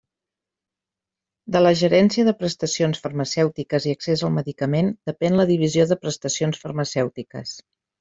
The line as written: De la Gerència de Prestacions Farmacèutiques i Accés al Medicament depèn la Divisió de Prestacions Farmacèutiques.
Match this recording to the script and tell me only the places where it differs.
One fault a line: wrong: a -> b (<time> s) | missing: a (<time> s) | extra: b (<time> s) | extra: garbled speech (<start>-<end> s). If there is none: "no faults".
no faults